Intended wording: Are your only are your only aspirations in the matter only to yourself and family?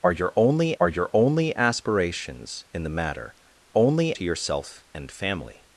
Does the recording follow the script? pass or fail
pass